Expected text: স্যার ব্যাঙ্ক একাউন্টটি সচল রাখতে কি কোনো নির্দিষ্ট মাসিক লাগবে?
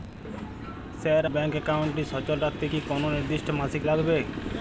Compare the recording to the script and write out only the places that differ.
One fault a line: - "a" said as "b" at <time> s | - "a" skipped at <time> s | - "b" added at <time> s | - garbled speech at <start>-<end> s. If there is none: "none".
none